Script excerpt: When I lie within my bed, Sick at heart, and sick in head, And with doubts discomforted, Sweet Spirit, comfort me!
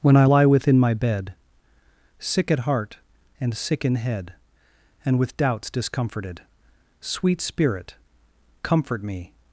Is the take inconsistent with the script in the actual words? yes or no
no